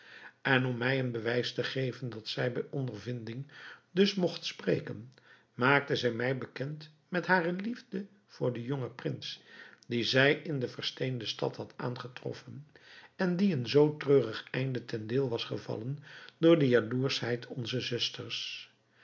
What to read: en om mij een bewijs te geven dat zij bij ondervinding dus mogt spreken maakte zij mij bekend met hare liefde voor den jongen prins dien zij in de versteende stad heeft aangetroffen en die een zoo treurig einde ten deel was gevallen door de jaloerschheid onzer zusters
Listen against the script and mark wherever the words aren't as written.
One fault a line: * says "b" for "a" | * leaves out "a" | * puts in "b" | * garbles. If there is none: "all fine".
* says "had" for "heeft"